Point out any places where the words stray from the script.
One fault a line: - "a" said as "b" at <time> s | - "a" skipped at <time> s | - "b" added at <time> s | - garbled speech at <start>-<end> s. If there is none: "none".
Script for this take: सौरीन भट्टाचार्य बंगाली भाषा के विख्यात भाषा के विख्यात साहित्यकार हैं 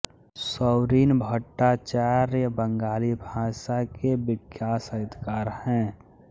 - "भाषा के विख्यात" skipped at 4.8 s